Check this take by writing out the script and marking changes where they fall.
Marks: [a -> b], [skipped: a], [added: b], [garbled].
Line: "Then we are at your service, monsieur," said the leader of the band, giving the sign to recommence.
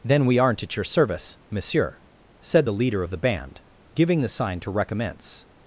"Then we [are -> aren't] at your service, monsieur," said the leader of the band, giving the sign to recommence.